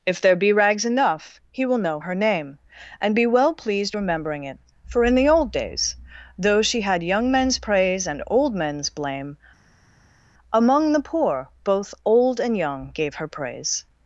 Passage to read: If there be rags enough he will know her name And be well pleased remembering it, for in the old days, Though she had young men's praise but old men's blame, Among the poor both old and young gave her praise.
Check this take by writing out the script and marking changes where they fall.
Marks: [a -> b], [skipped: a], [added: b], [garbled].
If there be rags enough he will know her name And be well pleased remembering it, for in the old days, Though she had young men's praise [but -> and] old men's blame, Among the poor both old and young gave her praise.